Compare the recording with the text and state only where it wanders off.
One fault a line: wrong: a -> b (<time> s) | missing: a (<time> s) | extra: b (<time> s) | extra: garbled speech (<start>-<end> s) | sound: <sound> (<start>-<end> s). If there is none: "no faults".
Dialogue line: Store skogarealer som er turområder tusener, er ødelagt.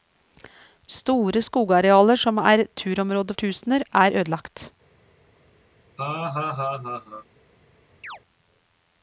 sound: laugh (6.0-7.3 s)
sound: chirp (8.0-8.2 s)